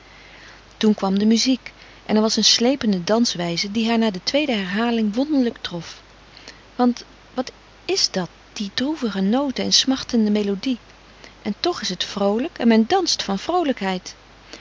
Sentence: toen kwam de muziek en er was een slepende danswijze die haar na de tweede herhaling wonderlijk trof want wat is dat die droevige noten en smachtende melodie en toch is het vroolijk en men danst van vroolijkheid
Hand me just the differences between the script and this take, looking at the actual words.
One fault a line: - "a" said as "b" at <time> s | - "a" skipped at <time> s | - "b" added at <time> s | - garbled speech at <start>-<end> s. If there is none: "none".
none